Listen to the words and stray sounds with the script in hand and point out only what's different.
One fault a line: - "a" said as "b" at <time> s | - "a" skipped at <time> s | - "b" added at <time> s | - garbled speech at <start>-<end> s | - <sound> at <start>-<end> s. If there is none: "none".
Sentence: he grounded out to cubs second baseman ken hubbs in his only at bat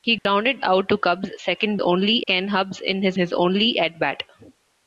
- dropout at 0.2-0.3 s
- "baseman" said as "only" at 1.8 s
- "his" added at 3.2 s